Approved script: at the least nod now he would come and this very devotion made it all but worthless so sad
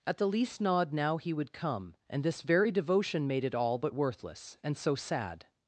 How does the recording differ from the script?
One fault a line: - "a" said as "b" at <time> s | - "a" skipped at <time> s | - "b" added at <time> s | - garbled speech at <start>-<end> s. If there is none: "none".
- "and" added at 4.6 s